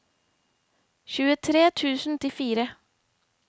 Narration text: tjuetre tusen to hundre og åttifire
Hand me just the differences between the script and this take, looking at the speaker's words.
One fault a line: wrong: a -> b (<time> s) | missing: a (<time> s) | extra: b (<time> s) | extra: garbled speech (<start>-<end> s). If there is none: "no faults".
missing: to hundre og (2.2 s)